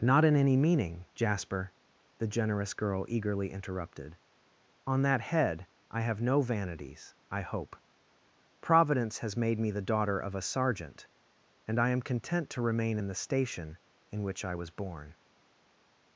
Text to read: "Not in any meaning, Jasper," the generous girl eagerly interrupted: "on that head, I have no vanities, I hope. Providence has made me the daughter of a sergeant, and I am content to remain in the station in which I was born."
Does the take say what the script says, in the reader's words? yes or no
yes